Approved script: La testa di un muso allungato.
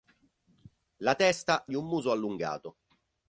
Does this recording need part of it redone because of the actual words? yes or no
no